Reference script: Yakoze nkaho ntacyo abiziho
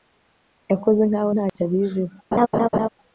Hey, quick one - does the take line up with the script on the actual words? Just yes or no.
yes